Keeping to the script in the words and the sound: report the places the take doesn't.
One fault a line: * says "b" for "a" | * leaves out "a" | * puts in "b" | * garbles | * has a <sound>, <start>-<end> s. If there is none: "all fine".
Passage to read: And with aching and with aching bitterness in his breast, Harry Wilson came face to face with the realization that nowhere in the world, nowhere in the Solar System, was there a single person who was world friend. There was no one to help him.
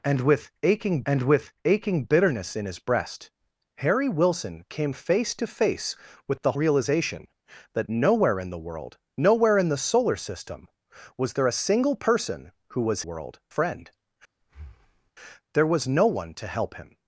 * has a breath, 14.4-15.1 s